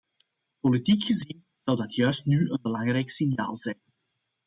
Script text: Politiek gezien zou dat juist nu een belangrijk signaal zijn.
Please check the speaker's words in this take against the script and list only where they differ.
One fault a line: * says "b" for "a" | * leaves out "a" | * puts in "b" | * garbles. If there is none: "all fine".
all fine